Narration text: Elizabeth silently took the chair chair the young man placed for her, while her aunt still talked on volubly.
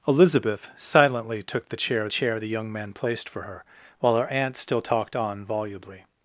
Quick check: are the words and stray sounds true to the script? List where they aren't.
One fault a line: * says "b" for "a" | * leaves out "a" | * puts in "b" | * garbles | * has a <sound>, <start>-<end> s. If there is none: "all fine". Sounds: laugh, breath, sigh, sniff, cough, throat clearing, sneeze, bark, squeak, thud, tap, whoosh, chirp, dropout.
all fine